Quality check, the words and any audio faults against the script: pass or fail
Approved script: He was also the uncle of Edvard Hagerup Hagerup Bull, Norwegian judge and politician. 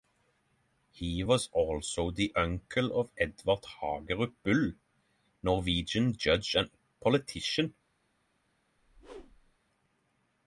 fail